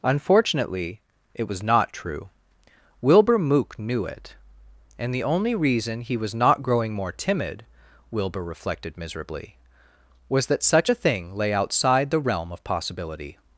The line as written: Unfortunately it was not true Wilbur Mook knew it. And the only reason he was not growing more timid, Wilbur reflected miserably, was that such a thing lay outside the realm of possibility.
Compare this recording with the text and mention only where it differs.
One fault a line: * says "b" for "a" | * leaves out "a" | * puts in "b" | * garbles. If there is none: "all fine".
all fine